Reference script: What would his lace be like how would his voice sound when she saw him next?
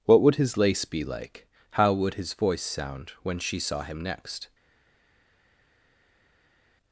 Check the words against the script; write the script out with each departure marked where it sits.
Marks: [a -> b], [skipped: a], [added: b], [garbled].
What would his lace be like how would his voice sound when she saw him next?